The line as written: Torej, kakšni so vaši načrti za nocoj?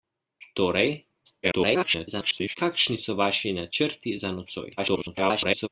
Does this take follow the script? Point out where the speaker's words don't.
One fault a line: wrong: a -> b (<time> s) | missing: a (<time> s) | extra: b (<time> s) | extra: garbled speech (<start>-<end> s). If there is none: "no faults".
extra: garbled speech (1.4-2.6 s)
extra: garbled speech (4.8-5.7 s)